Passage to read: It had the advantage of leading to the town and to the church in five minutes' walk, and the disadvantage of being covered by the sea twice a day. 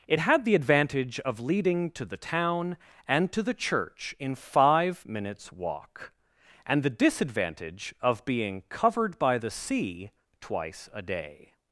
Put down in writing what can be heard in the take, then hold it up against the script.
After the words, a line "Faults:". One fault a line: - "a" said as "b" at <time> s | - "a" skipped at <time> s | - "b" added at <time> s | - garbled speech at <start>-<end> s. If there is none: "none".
It had the advantage of leading to the town and to the church in five minutes' walk, and the disadvantage of being covered by the sea twice a day.
Faults:
none